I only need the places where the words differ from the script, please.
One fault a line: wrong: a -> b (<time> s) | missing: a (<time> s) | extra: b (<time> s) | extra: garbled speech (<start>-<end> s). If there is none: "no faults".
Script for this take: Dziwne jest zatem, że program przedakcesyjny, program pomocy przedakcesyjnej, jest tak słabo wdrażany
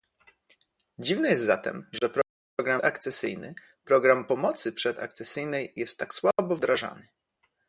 no faults